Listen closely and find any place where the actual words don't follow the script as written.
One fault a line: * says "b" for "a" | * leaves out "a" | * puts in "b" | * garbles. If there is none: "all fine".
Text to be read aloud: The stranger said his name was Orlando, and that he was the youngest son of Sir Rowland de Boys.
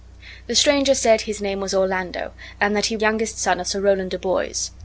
* leaves out "was the"